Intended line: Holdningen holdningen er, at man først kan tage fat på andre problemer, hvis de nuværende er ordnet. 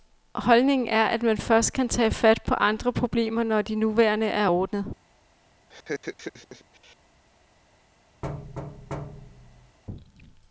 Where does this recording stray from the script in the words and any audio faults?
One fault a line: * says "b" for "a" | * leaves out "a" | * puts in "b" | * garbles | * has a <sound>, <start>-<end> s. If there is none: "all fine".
* leaves out "holdningen"
* says "når" for "hvis"
* has a laugh, 5.7-7.0 s
* has a thud, 8.2-9.8 s